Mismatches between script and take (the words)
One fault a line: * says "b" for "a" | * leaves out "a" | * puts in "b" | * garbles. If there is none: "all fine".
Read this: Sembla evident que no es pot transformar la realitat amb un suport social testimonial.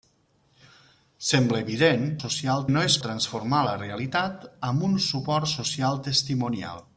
* says "social" for "que"
* leaves out "pot"